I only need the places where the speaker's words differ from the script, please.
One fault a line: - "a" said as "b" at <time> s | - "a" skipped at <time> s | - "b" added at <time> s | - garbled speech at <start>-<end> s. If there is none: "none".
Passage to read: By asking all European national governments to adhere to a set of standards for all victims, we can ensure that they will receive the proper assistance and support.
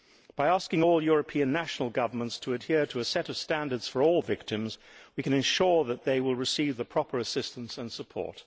none